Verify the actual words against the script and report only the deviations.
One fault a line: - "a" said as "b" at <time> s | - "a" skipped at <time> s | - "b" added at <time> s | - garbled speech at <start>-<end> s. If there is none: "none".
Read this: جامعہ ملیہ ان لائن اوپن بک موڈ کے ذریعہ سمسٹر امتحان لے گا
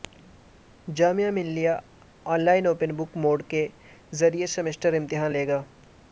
none